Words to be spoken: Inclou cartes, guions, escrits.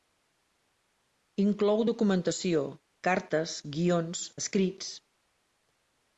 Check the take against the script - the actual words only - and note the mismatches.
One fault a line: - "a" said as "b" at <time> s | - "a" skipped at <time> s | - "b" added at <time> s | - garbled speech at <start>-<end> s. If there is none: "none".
- "documentació" added at 1.9 s